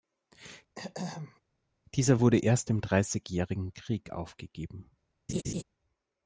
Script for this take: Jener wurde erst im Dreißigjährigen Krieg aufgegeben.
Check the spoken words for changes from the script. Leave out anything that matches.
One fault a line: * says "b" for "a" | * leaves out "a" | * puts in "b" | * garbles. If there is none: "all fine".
* says "Dieser" for "Jener"